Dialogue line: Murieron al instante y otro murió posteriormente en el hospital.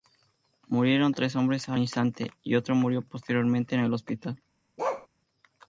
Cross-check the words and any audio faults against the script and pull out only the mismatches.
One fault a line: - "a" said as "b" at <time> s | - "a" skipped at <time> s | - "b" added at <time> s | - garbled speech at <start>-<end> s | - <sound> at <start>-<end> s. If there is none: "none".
- "tres hombres" added at 1.1 s
- bark at 4.8-5.1 s